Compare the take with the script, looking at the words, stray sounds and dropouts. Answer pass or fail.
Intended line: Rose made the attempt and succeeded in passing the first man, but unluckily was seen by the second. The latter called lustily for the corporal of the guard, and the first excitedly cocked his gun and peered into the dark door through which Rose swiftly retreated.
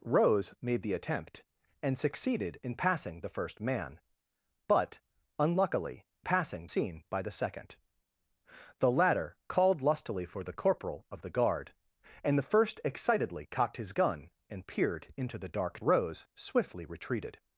fail